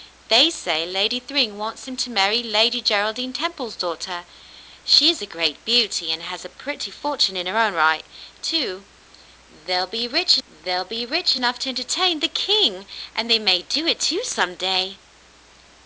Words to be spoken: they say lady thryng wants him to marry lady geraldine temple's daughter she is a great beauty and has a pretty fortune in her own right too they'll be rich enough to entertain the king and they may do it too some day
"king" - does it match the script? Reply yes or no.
yes